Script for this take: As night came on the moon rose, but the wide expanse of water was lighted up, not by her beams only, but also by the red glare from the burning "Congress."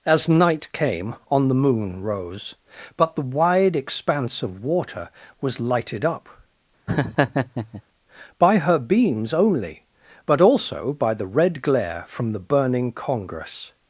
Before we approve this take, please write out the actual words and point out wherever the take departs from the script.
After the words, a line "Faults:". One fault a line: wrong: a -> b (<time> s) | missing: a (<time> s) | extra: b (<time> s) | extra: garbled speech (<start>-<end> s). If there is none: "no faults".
As night came on the moon rose, but the wide expanse of water was lighted up, by her beams only, but also by the red glare from the burning "Congress."
Faults:
missing: not (6.3 s)